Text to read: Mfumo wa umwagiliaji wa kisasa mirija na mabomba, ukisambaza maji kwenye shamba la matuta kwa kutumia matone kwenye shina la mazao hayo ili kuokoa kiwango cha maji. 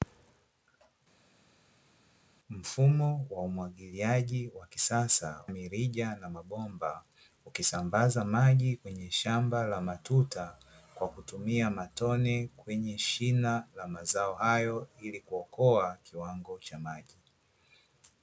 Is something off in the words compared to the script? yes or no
no